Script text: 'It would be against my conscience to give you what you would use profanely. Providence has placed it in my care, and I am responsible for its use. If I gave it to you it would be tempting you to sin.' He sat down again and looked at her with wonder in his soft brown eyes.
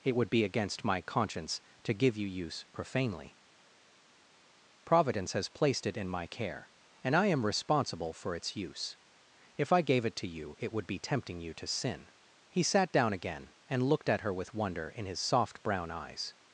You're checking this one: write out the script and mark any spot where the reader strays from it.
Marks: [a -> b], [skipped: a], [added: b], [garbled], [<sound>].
'It would be against my conscience to give you [skipped: what you would] use profanely. Providence has placed it in my care, and I am responsible for its use. If I gave it to you it would be tempting you to sin.' He sat down again and looked at her with wonder in his soft brown eyes.